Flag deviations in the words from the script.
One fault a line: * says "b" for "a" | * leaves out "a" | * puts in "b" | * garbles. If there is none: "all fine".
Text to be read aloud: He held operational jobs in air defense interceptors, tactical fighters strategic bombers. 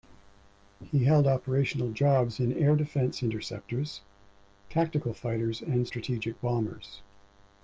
* puts in "and"